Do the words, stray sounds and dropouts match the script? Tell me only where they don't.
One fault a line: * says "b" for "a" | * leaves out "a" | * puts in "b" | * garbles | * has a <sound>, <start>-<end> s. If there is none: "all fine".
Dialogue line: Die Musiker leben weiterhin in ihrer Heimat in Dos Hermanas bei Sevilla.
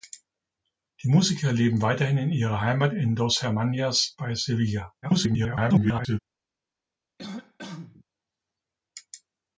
* garbles
* has a cough, 7.2-8.0 s